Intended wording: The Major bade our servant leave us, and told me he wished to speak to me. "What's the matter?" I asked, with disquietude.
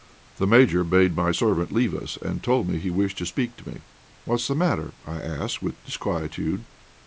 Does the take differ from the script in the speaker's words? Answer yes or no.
yes